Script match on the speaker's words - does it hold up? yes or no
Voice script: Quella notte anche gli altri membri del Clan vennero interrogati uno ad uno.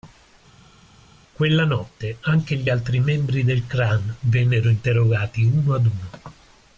yes